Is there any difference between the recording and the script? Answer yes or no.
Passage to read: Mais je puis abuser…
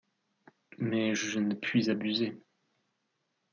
yes